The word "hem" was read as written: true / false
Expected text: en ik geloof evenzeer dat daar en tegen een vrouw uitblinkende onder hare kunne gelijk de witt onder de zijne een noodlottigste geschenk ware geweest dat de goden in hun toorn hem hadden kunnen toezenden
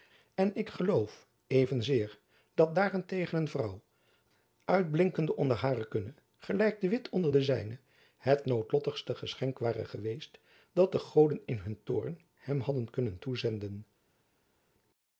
true